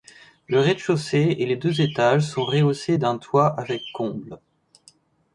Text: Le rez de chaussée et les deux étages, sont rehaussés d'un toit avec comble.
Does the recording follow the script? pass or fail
pass